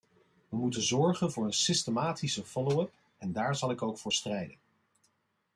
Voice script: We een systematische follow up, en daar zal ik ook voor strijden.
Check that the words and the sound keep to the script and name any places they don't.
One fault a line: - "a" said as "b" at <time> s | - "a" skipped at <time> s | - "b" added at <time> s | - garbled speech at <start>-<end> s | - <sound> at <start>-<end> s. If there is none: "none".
- "moeten zorgen voor" added at 0.6 s